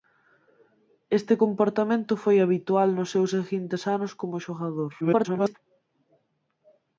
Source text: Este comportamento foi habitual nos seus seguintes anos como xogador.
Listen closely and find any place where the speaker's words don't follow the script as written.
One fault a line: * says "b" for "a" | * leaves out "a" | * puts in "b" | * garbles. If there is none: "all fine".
* garbles